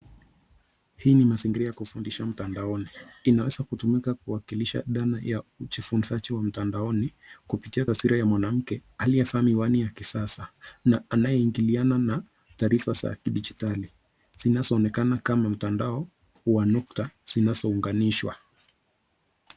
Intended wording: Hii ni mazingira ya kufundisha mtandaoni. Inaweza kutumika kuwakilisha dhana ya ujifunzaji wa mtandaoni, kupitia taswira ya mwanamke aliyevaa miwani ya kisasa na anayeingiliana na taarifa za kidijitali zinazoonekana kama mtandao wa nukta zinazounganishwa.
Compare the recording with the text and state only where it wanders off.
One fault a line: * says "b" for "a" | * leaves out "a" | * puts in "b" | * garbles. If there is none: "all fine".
all fine